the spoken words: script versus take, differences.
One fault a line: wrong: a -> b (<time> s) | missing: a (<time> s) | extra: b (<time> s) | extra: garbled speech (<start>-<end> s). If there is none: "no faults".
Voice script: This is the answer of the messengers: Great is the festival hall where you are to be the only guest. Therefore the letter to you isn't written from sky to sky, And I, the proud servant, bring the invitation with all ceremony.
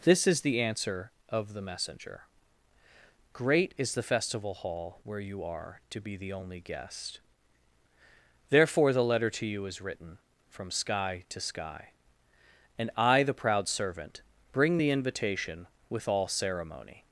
wrong: messengers -> messenger (1.6 s)
wrong: isn't -> is (9.7 s)